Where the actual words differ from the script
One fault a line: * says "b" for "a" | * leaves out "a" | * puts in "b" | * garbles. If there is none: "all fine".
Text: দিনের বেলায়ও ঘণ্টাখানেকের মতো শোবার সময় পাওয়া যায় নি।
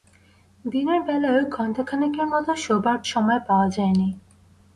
all fine